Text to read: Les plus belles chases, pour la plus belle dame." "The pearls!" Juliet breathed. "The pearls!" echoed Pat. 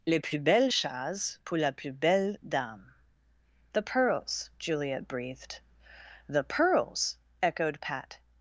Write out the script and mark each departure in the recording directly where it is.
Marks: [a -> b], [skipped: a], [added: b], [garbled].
Les plus belles chases, pour la plus belle dame." "The pearls!" Juliet breathed. "The pearls!" echoed Pat.